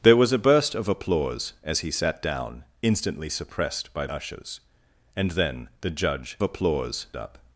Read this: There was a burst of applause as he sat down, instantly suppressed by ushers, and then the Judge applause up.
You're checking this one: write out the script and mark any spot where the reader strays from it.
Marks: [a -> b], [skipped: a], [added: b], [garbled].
There was a burst of applause as he sat down, instantly suppressed by ushers, and then the Judge applause up.